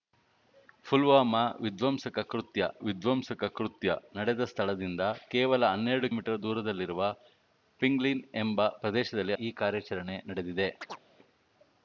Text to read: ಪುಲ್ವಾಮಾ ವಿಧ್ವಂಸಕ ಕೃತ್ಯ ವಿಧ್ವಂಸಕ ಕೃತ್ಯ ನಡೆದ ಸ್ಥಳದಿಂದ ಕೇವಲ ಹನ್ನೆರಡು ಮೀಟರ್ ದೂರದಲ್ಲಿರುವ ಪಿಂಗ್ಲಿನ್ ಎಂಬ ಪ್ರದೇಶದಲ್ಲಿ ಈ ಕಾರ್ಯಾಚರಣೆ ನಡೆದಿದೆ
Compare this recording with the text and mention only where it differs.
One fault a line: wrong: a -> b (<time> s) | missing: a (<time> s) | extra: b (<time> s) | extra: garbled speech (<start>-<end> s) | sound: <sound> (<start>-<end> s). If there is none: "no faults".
sound: chirp (10.8-11.0 s)